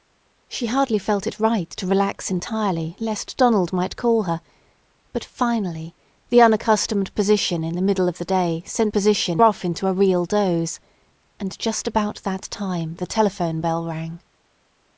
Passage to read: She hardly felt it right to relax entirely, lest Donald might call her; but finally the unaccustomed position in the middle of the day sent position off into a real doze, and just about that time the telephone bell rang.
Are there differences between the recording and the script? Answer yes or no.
no